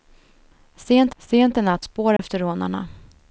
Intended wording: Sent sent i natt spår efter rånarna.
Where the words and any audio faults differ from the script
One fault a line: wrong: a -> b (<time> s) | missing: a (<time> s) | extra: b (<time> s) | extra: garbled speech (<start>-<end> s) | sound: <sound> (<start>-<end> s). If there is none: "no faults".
sound: dropout (2.2-2.2 s)